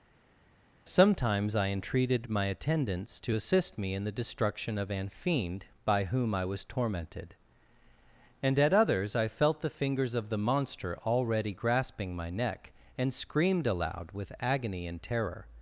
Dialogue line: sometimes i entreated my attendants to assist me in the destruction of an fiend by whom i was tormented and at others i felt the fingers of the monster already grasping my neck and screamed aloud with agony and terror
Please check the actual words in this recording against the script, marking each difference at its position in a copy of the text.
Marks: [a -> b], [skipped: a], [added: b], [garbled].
sometimes i entreated my attendants to assist me in the destruction of an fiend by whom i was tormented and at others i felt the fingers of the monster already grasping my neck and screamed aloud with agony and terror